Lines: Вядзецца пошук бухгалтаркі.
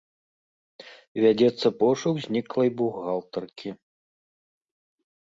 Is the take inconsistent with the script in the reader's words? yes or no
yes